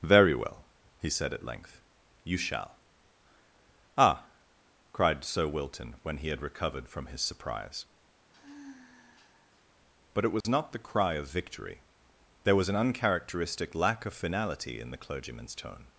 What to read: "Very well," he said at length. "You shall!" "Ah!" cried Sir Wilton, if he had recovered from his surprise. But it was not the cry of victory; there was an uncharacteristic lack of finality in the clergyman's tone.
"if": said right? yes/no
no